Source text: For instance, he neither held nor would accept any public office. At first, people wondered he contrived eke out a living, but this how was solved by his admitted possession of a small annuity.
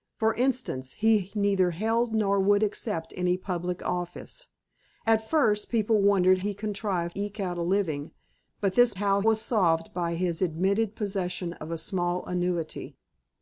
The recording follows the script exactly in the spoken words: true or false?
true